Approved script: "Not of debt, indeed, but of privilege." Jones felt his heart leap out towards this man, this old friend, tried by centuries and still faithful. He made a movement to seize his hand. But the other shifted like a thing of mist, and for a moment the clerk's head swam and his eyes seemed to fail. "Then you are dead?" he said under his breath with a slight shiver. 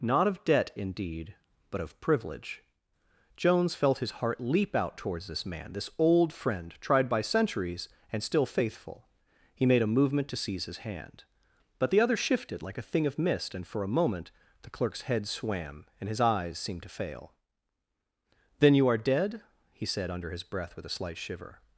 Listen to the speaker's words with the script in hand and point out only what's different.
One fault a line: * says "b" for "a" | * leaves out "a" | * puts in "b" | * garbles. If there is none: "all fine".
all fine